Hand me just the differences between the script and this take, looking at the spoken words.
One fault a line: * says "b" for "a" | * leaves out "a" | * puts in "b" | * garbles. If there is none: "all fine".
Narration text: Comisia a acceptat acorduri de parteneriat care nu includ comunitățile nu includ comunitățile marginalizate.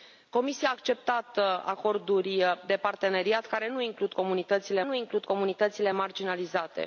all fine